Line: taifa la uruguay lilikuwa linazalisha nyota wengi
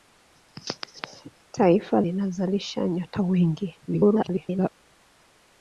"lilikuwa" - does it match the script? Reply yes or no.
no